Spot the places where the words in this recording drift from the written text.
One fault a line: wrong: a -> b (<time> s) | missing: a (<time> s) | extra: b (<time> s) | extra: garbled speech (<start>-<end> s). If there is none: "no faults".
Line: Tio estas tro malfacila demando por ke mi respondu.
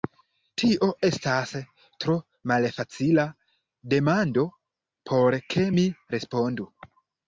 no faults